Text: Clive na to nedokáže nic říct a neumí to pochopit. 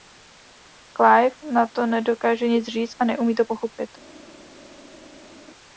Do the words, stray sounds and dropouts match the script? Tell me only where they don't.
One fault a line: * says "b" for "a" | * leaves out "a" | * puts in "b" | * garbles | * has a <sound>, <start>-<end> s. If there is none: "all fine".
all fine